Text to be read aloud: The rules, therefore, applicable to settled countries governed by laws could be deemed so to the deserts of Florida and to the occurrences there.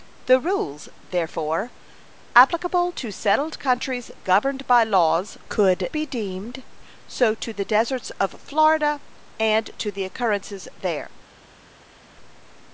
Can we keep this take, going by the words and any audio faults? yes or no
yes